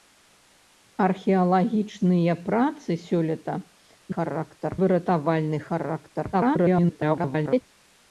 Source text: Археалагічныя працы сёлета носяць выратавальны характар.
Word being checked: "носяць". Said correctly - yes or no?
no